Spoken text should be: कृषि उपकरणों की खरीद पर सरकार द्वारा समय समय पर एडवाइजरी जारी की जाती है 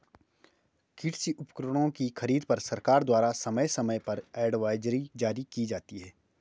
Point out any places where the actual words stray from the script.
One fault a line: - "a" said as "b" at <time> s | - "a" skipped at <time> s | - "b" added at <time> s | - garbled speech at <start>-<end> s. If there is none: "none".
none